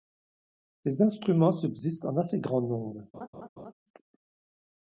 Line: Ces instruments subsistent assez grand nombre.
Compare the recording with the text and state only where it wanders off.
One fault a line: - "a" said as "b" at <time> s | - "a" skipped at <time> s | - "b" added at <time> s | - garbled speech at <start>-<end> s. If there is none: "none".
- "en" added at 2.0 s